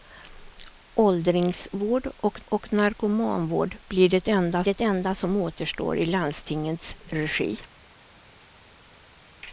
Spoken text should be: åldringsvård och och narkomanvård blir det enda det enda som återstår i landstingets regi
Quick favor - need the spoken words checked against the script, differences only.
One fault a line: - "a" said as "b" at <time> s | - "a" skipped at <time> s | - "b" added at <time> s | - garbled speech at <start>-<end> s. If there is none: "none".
none